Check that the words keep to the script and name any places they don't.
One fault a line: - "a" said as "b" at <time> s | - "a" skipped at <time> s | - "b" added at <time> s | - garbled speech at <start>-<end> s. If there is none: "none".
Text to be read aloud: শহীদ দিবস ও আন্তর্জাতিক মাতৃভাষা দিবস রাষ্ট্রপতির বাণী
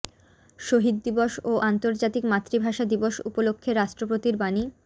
- "উপলক্ষে" added at 3.3 s